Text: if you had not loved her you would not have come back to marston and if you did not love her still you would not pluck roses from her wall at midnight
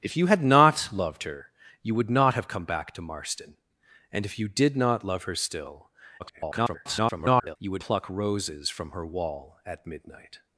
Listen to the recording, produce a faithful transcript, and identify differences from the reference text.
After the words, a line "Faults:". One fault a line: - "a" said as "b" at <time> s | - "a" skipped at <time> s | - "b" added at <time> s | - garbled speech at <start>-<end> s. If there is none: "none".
if you had not loved her you would not have come back to marston and if you did not love her still [garbled] you would pluck roses from her wall at midnight
Faults:
- garbled speech at 6.2-7.6 s
- "not" skipped at 7.8 s